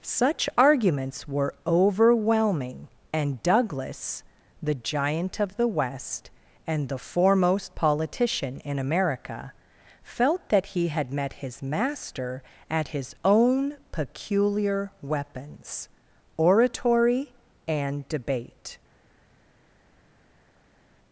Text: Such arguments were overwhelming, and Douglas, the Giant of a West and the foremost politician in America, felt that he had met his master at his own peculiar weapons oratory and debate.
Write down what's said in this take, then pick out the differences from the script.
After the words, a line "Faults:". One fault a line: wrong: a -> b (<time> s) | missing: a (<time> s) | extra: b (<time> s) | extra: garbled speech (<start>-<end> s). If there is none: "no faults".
Such arguments were overwhelming, and Douglas, the Giant of the West and the foremost politician in America, felt that he had met his master at his own peculiar weapons oratory and debate.
Faults:
wrong: a -> the (5.6 s)